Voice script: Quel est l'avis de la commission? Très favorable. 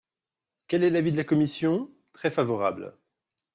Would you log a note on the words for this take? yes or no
no